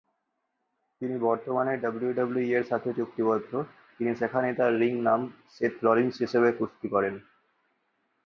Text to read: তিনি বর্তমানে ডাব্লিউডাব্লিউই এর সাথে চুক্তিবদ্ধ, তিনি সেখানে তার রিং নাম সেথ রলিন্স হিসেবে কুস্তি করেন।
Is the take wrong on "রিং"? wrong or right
right